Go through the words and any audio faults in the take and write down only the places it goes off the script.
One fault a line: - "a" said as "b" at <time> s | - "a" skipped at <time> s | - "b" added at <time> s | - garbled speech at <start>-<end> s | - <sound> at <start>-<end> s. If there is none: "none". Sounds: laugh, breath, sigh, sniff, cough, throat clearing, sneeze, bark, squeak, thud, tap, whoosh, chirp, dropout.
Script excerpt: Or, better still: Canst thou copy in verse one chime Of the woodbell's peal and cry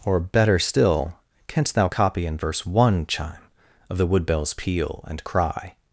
none